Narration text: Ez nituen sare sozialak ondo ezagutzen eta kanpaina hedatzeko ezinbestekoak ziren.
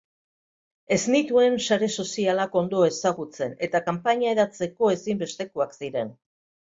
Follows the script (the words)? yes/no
yes